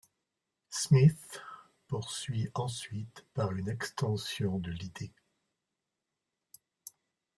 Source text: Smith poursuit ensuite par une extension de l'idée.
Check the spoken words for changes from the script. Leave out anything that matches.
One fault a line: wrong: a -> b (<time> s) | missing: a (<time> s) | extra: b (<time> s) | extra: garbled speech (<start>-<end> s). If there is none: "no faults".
no faults